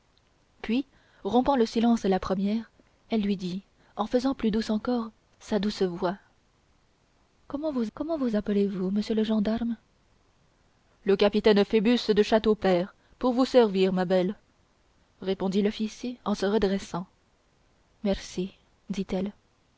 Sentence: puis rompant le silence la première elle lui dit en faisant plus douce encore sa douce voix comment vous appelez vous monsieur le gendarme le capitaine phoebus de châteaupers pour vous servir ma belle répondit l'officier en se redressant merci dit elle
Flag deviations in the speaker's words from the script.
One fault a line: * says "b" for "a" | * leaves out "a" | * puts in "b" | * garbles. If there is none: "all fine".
* puts in "comment vous"